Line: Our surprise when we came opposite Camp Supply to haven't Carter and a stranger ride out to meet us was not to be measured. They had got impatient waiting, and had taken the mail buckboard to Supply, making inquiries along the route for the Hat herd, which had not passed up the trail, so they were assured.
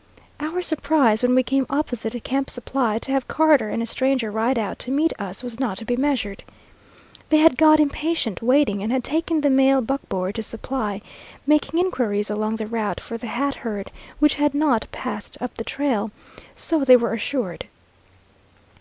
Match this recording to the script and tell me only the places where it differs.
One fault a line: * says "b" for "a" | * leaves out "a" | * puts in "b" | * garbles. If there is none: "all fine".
* says "have" for "haven't"